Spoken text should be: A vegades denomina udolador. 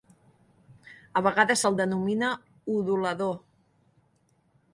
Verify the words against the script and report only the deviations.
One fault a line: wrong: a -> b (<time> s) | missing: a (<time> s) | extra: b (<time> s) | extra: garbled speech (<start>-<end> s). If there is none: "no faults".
extra: se'l (1.6 s)